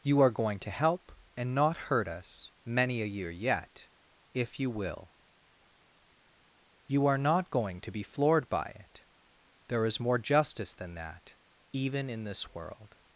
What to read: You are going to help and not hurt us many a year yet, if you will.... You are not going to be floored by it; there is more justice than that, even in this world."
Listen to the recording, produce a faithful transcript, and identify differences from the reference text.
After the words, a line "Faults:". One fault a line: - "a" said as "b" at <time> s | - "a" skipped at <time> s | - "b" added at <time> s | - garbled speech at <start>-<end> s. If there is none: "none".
You are going to help and not hurt us many a year yet, if you will.... You are not going to be floored by it; there is more justice than that, even in this world."
Faults:
none